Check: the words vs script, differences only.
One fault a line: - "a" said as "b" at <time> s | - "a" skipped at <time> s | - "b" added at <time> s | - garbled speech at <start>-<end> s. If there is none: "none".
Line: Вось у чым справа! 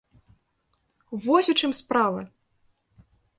none